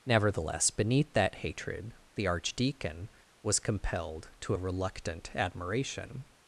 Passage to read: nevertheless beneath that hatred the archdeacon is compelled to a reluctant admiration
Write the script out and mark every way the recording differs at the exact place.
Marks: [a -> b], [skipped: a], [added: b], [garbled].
nevertheless beneath that hatred the archdeacon [is -> was] compelled to a reluctant admiration